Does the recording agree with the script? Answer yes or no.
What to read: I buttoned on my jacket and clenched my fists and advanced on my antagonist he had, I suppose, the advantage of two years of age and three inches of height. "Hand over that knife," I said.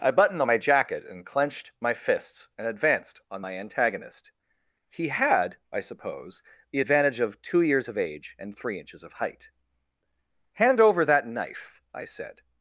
yes